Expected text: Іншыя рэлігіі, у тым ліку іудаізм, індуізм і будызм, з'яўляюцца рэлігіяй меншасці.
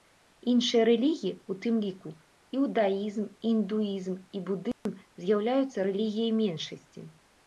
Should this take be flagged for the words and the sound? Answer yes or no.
yes